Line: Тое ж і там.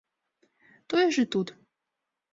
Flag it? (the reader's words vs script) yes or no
yes